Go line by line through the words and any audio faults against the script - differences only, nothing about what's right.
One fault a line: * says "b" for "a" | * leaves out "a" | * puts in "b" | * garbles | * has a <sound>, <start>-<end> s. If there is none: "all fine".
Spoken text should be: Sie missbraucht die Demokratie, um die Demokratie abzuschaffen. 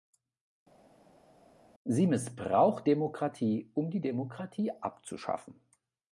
* leaves out "die"